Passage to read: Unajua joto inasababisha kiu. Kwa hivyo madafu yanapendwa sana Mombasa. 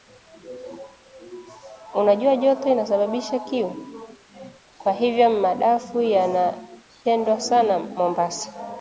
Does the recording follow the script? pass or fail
pass